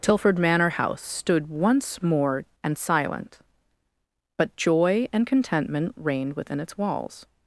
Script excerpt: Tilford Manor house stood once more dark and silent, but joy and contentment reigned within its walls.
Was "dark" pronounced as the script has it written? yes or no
no